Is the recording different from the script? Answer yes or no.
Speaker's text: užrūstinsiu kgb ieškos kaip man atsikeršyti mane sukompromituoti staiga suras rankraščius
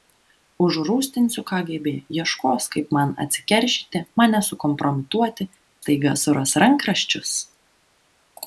no